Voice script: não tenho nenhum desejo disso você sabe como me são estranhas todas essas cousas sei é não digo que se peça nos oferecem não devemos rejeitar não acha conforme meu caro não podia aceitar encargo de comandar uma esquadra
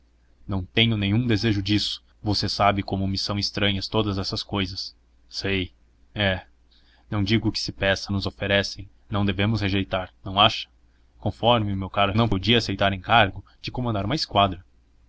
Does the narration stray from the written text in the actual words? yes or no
no